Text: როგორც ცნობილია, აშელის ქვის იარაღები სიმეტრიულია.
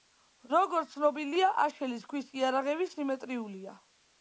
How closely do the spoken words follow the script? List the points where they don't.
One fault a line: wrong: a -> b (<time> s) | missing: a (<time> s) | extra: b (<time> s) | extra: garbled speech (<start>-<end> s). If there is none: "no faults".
no faults